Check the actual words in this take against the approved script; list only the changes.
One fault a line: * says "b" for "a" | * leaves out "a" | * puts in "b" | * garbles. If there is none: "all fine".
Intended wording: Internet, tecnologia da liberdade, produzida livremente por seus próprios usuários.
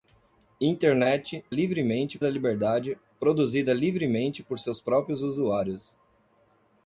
* says "livremente" for "tecnologia"